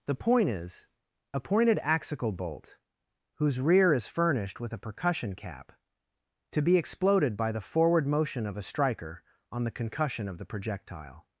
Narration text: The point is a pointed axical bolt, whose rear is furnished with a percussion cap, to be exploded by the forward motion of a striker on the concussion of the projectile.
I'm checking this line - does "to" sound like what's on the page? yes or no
yes